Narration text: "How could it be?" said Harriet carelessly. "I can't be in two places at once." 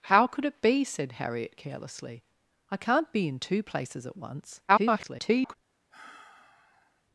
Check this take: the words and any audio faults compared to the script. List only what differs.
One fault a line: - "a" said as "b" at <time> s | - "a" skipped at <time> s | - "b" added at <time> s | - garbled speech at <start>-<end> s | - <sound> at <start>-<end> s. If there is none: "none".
- garbled speech at 4.7-5.6 s
- sigh at 5.9-7.0 s